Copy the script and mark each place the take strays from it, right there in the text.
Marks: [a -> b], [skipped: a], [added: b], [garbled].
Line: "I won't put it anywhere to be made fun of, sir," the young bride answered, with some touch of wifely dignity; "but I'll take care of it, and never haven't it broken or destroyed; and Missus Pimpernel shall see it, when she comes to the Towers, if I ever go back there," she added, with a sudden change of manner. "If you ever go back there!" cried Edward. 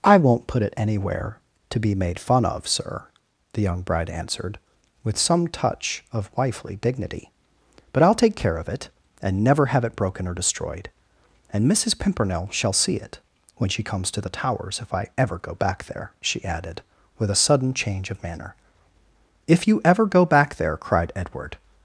"I won't put it anywhere to be made fun of, sir," the young bride answered, with some touch of wifely dignity; "but I'll take care of it, and never [haven't -> have] it broken or destroyed; and Missus Pimpernel shall see it, when she comes to the Towers, if I ever go back there," she added, with a sudden change of manner. "If you ever go back there!" cried Edward.